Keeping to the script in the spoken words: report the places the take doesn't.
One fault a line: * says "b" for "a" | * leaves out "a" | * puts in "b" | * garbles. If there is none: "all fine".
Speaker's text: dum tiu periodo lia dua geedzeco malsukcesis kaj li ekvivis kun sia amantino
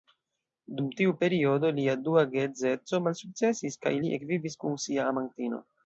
all fine